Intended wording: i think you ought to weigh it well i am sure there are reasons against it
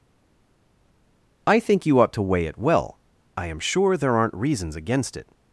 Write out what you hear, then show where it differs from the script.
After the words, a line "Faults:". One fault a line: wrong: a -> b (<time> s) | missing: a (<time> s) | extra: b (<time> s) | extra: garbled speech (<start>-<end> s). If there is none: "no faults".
i think you ought to weigh it well i am sure there aren't reasons against it
Faults:
wrong: are -> aren't (4.2 s)